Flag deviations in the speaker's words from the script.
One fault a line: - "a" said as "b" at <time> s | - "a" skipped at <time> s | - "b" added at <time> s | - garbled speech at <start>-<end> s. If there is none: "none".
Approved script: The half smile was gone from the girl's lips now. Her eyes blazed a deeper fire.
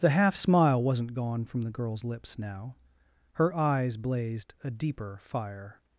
- "was" said as "wasn't" at 0.8 s